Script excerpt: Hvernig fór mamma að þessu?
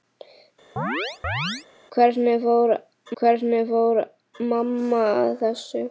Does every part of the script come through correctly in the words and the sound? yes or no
no